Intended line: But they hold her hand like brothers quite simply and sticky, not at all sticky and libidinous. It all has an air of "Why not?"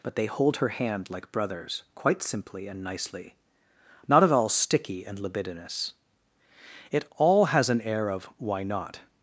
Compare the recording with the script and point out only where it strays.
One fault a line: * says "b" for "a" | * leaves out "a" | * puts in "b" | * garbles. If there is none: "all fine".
* says "nicely" for "sticky"